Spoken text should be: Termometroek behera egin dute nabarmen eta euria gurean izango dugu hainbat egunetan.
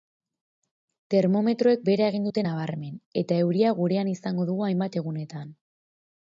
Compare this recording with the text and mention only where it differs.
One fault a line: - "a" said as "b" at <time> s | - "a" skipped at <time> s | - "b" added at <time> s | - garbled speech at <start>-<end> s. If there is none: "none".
none